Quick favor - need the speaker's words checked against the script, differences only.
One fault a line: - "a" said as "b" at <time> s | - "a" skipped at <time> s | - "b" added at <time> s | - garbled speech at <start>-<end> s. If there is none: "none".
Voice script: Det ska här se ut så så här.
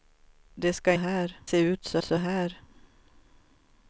none